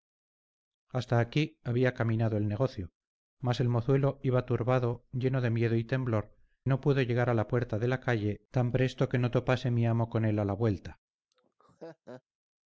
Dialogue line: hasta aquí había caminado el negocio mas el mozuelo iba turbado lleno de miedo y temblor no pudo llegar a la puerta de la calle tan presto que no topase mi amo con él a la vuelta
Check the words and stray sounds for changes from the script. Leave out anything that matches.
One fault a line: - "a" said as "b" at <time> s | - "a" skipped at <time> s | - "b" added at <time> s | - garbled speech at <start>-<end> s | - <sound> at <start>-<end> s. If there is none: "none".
- laugh at 11.3-12.2 s